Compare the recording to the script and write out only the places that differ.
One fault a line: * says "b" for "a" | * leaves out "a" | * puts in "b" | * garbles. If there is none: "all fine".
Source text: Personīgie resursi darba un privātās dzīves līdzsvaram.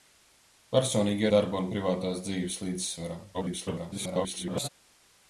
* leaves out "resursi"
* garbles